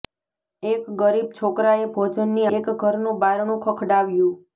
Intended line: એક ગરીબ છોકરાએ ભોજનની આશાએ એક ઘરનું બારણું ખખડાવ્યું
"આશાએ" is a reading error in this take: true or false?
true